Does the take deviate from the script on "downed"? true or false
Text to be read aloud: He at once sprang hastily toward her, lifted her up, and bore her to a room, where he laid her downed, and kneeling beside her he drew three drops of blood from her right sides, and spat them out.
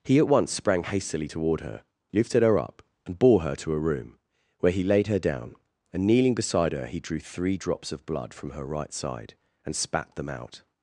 true